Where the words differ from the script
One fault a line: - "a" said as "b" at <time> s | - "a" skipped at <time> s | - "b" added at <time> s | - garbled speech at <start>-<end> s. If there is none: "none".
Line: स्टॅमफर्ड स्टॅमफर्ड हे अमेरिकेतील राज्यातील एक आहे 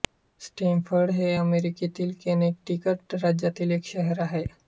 - "स्टॅमफर्ड" skipped at 1.1 s
- "कनेटिकट" added at 2.2 s
- "शहर" added at 3.9 s